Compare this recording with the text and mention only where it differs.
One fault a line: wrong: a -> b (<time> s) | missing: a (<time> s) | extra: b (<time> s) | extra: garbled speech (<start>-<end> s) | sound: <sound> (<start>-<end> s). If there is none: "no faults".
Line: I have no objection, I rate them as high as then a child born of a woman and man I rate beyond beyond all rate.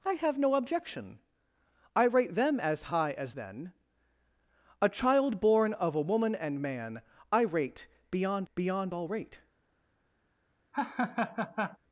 sound: laugh (10.7-11.8 s)